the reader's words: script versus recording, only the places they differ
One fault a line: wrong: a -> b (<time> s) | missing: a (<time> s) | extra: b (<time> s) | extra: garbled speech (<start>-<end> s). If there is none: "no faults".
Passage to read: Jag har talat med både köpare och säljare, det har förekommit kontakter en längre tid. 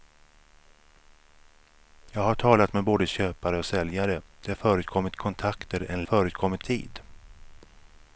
wrong: längre -> förekommit (6.0 s)